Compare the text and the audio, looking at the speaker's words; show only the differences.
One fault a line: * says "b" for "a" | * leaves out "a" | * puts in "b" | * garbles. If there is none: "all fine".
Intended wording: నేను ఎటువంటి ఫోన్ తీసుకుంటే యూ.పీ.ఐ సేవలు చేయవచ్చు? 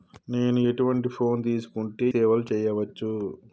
* leaves out "యూ.పీ.ఐ"